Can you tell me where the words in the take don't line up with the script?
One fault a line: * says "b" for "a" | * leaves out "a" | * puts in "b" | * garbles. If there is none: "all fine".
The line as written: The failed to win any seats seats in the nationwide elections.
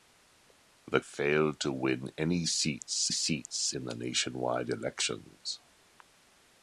all fine